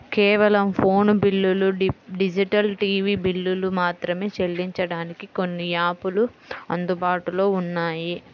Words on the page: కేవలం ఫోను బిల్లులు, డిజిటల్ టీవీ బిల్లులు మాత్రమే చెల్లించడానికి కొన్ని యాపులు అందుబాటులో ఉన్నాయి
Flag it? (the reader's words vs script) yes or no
no